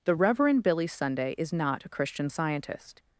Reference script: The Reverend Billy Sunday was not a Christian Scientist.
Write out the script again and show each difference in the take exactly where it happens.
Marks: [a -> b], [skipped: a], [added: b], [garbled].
The Reverend Billy Sunday [was -> is] not a Christian Scientist.